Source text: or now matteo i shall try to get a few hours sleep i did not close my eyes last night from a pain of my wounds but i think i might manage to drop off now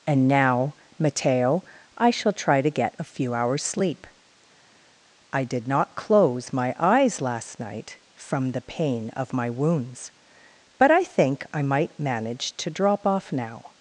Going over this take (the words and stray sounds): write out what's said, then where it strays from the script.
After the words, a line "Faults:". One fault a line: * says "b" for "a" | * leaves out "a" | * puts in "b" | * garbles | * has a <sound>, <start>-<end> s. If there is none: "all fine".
and now matteo i shall try to get a few hours sleep i did not close my eyes last night from the pain of my wounds but i think i might manage to drop off now
Faults:
* says "and" for "or"
* says "the" for "a"